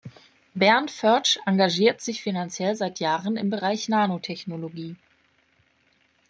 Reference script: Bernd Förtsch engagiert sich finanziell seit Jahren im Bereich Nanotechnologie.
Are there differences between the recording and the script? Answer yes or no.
no